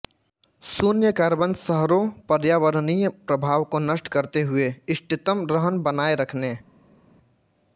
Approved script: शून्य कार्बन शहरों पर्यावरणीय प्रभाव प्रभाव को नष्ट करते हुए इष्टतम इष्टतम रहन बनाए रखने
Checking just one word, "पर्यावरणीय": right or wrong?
right